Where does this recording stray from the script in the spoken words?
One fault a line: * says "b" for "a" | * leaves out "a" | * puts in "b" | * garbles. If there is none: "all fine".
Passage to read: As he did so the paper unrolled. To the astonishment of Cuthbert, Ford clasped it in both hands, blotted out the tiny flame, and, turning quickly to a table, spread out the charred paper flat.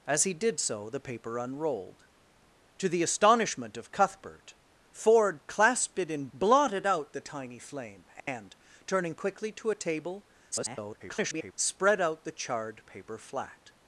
* leaves out "both hands"
* garbles